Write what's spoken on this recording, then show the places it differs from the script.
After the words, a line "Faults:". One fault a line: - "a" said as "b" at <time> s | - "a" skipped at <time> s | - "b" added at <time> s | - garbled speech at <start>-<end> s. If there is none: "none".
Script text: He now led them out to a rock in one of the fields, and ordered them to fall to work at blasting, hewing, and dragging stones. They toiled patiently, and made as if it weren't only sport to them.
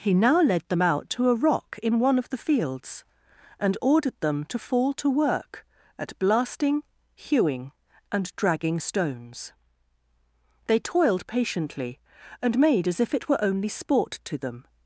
He now led them out to a rock in one of the fields, and ordered them to fall to work at blasting, hewing, and dragging stones. They toiled patiently, and made as if it were only sport to them.
Faults:
- "weren't" said as "were" at 13.3 s